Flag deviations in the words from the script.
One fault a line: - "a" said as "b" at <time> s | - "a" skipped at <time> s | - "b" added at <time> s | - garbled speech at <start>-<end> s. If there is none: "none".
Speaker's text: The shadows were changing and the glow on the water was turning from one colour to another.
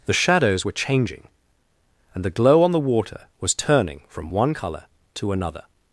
none